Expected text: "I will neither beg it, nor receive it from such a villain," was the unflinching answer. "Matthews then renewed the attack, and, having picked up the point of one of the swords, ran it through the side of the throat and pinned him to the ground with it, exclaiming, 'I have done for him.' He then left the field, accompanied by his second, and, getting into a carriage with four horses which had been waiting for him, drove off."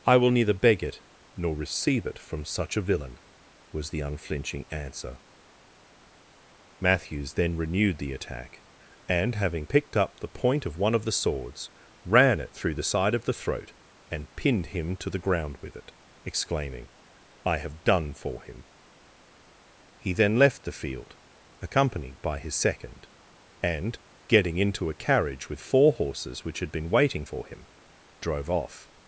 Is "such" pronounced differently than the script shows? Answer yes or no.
no